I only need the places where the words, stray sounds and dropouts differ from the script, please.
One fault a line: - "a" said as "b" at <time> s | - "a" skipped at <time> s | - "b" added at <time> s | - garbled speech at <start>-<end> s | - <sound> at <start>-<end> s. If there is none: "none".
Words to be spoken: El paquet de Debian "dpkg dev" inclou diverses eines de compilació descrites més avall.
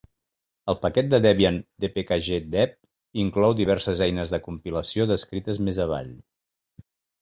none